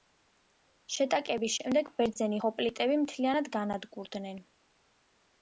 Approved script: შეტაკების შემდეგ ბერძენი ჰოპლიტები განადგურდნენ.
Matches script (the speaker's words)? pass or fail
fail